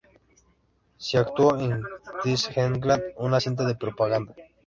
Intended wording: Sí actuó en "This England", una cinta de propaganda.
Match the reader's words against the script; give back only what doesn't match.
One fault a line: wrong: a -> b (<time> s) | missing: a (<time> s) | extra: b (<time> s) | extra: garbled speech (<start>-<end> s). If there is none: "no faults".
no faults